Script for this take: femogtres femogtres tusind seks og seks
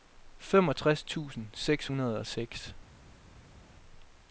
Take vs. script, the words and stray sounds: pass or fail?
fail